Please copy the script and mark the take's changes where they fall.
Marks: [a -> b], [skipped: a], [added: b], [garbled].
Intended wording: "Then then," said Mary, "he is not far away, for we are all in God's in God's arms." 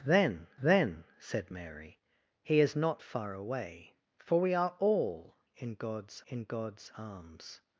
"Then then," said Mary, "he is not far away, for we are all in God's in God's arms."